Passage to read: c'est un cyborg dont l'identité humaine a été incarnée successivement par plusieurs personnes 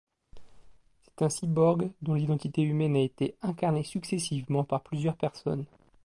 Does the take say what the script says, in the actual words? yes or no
yes